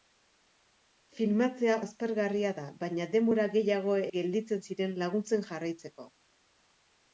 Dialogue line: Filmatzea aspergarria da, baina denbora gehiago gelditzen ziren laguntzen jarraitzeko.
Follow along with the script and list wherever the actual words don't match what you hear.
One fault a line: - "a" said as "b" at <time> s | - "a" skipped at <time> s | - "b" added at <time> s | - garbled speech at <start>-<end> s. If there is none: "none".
none